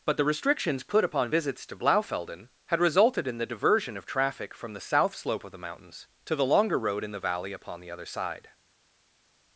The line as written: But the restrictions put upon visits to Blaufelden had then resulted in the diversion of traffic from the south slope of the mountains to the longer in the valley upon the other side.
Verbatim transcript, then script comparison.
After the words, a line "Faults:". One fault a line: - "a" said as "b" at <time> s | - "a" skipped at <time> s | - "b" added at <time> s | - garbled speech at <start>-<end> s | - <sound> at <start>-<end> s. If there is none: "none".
But the restrictions put upon visits to Blaufelden had resulted in the diversion of traffic from the south slope of the mountains to the longer road in the valley upon the other side.
Faults:
- "then" skipped at 2.8 s
- "road" added at 6.8 s